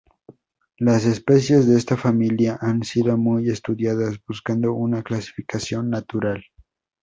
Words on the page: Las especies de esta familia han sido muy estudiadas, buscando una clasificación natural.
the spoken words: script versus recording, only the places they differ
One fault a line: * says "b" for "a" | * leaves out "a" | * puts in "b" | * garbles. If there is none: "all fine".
all fine